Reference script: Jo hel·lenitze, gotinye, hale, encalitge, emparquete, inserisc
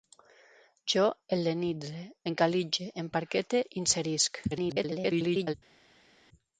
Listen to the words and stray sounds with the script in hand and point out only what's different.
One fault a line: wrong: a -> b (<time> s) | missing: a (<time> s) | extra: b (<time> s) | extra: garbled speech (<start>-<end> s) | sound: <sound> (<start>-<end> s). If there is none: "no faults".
missing: gotinye hale (2.0 s)
extra: garbled speech (4.5-5.5 s)